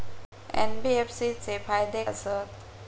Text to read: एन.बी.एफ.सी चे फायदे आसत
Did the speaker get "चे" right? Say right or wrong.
right